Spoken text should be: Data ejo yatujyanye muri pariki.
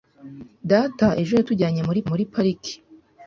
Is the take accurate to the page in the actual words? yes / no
no